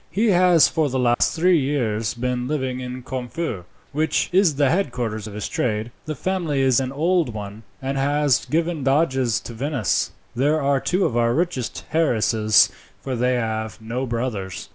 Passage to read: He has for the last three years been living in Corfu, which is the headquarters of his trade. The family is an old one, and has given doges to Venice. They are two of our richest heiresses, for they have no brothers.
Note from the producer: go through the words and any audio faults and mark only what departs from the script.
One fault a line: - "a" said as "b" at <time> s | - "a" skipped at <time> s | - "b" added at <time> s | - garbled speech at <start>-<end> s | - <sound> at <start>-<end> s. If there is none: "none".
- dropout at 1.1-1.2 s